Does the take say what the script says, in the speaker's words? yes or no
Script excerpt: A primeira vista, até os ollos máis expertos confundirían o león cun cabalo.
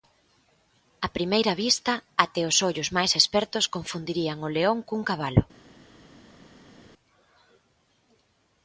yes